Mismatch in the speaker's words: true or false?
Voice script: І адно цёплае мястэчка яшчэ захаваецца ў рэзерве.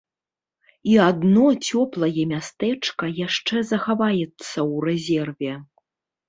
false